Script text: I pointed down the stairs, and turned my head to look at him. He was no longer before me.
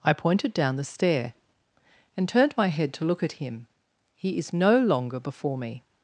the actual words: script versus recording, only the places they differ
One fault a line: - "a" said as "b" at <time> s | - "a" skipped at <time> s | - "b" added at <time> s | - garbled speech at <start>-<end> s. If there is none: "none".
- "stairs" said as "stair" at 0.8 s
- "was" said as "is" at 4.4 s